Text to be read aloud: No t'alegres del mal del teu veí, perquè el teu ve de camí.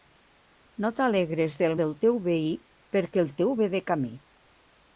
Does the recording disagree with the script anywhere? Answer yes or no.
yes